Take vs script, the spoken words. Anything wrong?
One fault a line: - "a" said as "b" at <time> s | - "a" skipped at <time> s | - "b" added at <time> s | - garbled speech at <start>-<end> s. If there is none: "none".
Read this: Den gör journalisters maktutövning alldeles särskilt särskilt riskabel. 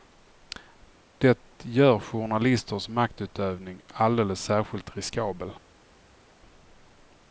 - "Den" said as "Det" at 1.2 s
- "särskilt" skipped at 5.0 s